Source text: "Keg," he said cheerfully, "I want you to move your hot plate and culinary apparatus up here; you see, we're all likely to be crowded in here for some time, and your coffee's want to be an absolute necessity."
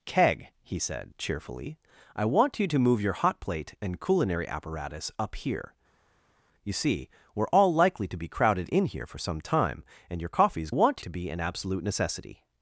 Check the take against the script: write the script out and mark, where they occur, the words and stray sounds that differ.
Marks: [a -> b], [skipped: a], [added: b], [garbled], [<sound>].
"Keg," he said cheerfully, "I want you to move your hot plate and culinary apparatus up here; you see, we're all likely to be crowded in here for some time, and your coffee's want to be an absolute necessity."